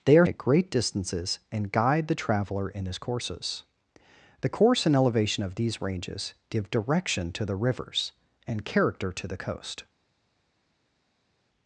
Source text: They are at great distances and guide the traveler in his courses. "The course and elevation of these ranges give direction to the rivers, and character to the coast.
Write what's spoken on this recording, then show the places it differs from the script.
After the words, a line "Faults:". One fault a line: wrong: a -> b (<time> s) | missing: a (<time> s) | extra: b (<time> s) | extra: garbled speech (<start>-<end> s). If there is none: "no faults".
They are at great distances and guide the traveler in his courses. "The course and elevation of these ranges give direction to the rivers, and character to the coast.
Faults:
no faults